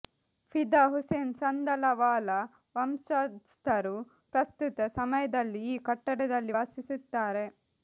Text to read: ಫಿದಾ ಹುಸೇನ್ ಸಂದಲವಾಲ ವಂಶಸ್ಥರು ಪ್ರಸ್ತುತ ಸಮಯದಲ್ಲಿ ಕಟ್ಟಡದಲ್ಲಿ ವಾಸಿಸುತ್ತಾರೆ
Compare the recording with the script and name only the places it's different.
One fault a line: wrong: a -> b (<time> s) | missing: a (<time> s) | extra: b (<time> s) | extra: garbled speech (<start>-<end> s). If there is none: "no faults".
extra: ಈ (5.7 s)